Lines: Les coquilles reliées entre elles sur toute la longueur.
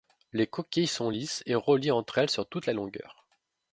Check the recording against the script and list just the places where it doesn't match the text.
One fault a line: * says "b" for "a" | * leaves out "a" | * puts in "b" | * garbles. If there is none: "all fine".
* puts in "sont lisses et"